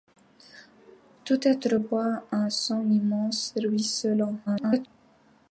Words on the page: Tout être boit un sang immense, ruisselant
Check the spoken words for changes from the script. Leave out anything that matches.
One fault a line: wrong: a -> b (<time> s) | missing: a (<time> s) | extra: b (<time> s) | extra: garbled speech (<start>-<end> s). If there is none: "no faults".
extra: garbled speech (4.5-4.9 s)